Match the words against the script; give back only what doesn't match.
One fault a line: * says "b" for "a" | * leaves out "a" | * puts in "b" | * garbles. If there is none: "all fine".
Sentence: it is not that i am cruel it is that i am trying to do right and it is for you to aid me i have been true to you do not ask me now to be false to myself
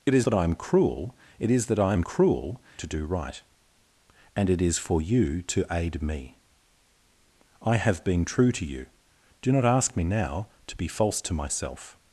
* leaves out "not"
* says "cruel" for "trying"